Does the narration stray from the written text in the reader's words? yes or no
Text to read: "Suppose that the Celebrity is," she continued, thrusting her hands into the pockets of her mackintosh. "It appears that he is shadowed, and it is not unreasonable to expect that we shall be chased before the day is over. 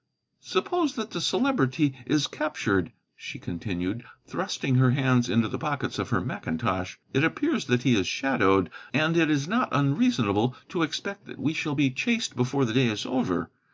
yes